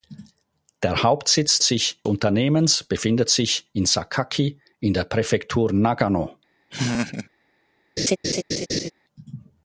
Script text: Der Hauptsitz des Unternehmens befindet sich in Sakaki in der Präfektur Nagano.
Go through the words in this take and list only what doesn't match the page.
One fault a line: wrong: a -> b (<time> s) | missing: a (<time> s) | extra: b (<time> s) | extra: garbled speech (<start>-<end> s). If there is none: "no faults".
wrong: des -> sich (1.6 s)